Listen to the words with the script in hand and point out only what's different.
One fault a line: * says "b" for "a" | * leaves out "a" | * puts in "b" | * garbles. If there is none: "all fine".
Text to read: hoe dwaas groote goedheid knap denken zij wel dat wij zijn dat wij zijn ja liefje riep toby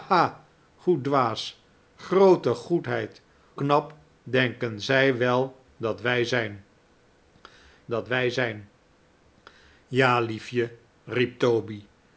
all fine